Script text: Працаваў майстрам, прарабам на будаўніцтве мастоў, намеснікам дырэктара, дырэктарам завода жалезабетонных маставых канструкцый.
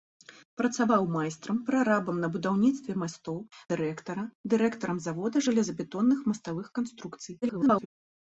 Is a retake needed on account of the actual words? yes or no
yes